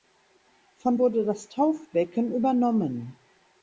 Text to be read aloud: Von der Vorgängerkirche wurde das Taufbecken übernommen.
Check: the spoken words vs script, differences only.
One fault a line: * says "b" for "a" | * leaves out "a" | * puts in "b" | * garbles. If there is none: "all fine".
* leaves out "der Vorgängerkirche"